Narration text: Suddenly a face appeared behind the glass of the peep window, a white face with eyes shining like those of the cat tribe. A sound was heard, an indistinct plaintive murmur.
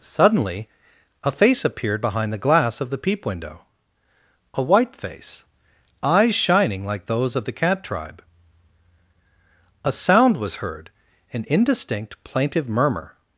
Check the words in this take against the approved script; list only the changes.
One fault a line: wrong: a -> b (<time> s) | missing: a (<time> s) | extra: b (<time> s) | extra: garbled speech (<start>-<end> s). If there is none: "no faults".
missing: with (5.5 s)